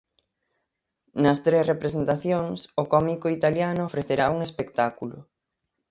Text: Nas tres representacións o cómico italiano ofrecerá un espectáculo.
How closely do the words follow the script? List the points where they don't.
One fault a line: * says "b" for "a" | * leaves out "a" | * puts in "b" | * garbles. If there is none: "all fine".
all fine